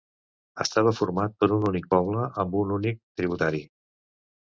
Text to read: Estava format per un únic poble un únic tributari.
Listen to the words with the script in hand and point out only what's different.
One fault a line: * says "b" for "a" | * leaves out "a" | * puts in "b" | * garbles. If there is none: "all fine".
* puts in "amb"